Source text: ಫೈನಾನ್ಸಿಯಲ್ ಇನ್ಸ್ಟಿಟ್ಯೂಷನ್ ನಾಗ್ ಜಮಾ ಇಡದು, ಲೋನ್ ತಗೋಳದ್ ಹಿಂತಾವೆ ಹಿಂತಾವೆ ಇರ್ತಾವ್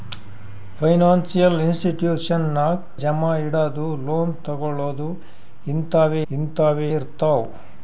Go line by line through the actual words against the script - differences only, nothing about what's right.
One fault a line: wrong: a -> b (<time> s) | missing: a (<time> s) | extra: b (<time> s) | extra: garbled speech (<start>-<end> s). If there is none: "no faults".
no faults